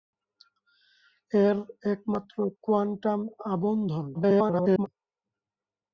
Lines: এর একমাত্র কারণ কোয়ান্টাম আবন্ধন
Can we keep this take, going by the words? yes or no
no